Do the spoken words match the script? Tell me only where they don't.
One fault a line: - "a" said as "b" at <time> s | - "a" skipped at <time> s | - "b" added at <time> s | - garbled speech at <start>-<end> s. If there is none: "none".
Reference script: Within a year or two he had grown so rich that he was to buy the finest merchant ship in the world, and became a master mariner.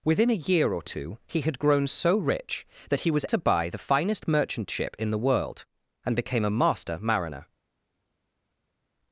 none